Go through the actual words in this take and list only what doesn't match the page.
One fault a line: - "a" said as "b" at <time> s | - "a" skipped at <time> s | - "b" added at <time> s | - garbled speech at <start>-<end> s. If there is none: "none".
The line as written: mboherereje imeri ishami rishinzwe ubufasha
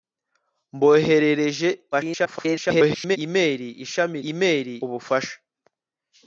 - garbled speech at 1.9-3.2 s
- "rishinzwe" said as "imeri" at 4.3 s